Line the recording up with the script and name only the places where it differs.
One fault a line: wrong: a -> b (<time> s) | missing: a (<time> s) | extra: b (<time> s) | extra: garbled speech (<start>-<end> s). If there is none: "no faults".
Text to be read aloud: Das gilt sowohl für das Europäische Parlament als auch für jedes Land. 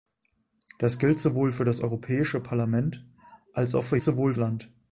wrong: jedes -> sowohl (4.0 s)